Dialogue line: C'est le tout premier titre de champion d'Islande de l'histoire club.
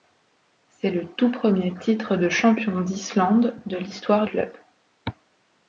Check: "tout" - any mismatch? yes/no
no